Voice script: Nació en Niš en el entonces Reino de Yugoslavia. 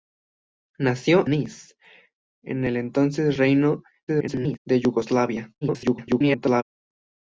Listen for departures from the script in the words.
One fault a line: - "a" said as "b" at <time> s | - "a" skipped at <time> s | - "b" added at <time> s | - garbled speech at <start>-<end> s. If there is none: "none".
- "en" skipped at 1.3 s
- garbled speech at 4.1-4.6 s
- garbled speech at 5.6-6.6 s